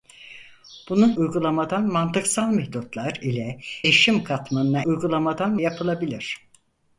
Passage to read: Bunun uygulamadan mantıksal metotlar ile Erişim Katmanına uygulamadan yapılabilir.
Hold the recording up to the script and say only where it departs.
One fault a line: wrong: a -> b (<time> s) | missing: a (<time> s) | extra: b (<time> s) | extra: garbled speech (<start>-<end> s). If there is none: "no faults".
no faults